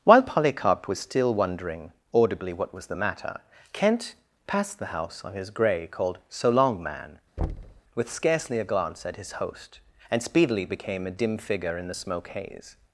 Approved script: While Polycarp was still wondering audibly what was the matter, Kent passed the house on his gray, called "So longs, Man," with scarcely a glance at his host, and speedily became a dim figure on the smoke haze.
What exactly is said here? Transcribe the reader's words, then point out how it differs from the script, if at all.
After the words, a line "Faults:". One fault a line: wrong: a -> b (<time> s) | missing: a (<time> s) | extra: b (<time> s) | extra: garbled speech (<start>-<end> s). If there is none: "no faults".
While Polycarp was still wondering audibly what was the matter, Kent passed the house on his gray, called "So long, Man," with scarcely a glance at his host, and speedily became a dim figure in the smoke haze.
Faults:
wrong: longs -> long (6.5 s)
wrong: on -> in (11.8 s)